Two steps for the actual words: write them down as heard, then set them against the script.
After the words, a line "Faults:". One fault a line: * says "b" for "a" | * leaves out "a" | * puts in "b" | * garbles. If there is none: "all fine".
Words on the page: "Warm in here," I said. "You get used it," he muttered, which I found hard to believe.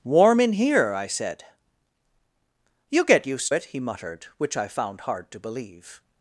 "Warm in here," I said. "You get used it," he muttered, which I found hard to believe.
Faults:
all fine